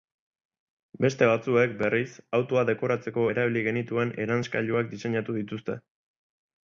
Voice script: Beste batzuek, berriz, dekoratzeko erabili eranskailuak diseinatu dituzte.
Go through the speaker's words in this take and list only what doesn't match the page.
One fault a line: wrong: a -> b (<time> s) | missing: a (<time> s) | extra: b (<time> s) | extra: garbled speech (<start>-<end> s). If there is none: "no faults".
extra: autoa (2.4 s)
extra: genituen (3.7 s)